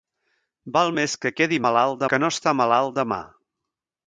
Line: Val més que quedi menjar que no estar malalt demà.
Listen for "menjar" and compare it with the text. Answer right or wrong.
wrong